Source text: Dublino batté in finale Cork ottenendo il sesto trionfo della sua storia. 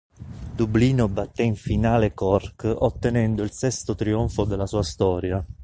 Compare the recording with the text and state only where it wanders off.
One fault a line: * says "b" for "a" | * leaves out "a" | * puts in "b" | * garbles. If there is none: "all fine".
all fine